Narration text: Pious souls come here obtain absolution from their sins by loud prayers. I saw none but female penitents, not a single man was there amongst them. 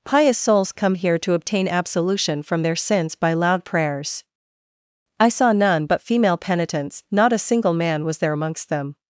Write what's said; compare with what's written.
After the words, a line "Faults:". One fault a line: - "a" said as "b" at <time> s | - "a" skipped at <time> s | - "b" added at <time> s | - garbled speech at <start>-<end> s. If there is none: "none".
Pious souls come here to obtain absolution from their sins by loud prayers. I saw none but female penitents, not a single man was there amongst them.
Faults:
- "to" added at 1.2 s